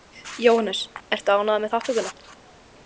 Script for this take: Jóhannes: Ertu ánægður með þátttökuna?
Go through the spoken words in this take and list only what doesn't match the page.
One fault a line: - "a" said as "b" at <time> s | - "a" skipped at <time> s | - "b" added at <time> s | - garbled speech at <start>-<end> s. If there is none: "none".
none